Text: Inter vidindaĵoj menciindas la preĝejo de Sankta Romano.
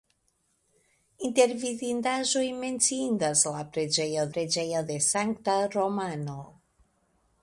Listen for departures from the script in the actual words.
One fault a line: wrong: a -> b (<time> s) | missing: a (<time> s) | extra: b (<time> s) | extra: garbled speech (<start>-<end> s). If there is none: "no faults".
extra: preĝejo (4.3 s)